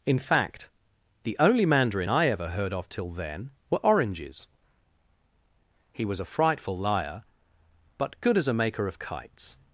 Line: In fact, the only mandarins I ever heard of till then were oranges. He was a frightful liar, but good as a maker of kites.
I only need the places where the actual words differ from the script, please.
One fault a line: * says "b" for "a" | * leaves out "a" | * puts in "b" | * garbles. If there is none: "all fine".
* says "mandarin" for "mandarins"